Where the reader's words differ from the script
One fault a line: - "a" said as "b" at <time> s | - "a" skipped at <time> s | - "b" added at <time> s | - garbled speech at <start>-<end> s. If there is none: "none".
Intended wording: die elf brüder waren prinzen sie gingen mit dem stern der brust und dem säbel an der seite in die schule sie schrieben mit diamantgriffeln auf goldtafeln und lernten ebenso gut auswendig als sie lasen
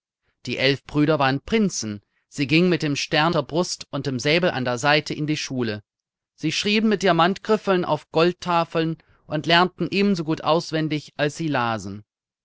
none